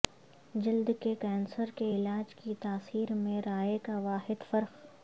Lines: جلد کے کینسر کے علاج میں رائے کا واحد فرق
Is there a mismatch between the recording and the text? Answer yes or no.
yes